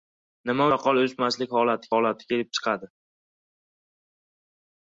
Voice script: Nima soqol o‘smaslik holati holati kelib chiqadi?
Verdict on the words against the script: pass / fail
pass